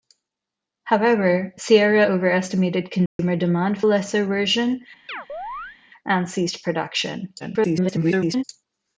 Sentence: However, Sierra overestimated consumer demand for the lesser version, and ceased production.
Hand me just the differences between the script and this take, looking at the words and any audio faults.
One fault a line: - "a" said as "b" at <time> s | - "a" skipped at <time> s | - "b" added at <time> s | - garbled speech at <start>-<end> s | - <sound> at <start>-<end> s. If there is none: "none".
- dropout at 3.1-3.2 s
- "for the" skipped at 3.8 s
- chirp at 5.1-5.8 s
- garbled speech at 7.4-8.4 s